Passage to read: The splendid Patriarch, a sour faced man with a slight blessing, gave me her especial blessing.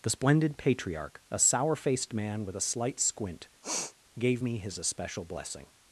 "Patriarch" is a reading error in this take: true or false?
false